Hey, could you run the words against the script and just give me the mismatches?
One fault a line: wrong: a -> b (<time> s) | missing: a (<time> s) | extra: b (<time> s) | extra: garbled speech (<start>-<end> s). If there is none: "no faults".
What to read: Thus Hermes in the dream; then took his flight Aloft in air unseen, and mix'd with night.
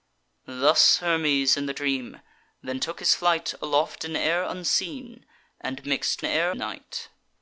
wrong: with -> air (6.2 s)